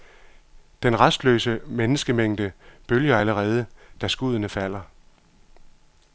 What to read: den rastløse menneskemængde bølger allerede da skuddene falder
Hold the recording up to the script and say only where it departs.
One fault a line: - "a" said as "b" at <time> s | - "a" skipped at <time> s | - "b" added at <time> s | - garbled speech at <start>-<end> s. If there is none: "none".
none